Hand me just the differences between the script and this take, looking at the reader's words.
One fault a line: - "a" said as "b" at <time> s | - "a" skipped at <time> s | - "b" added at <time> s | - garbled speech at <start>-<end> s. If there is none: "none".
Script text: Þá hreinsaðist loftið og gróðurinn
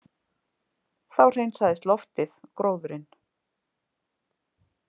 - "og" skipped at 2.4 s